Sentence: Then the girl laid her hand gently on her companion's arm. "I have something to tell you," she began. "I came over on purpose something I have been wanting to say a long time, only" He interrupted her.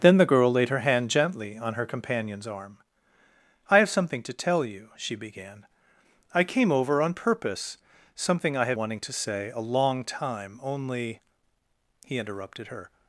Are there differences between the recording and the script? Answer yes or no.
yes